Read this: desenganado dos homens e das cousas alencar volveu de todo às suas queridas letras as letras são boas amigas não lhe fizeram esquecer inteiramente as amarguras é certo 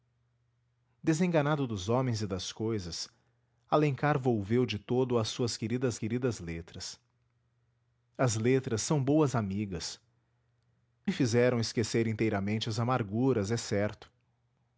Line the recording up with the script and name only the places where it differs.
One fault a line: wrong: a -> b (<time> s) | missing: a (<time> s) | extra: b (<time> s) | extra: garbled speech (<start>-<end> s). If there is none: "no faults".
extra: queridas (6.0 s)
missing: não (10.0 s)